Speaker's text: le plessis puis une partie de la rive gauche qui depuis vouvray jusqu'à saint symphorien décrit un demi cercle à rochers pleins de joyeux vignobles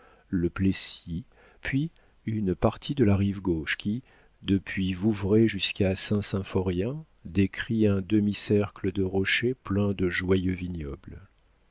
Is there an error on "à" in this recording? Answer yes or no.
yes